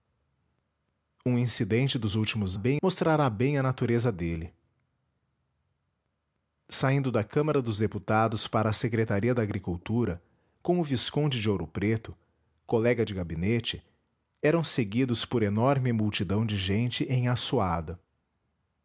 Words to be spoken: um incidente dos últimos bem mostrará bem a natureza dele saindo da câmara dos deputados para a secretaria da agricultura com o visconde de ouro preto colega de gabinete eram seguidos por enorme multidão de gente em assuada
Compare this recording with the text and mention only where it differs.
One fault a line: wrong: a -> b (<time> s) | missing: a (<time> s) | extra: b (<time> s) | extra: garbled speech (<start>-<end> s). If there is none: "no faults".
no faults